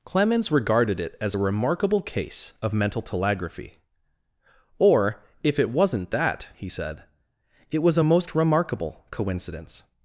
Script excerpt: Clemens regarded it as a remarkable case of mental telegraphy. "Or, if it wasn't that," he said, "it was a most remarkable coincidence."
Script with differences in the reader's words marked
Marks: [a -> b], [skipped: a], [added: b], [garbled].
Clemens regarded it as a remarkable case of mental telegraphy. "Or, if it wasn't that," he said, "it was a most remarkable coincidence."